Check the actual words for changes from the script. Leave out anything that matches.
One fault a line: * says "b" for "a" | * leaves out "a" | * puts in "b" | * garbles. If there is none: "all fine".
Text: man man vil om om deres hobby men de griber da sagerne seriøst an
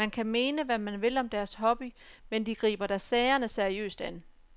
* puts in "kan mene hvad"
* leaves out "om"